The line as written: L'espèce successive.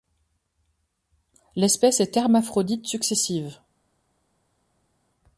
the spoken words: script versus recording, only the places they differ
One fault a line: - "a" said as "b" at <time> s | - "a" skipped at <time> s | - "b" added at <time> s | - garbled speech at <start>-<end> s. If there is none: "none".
- "est hermaphrodite" added at 2.0 s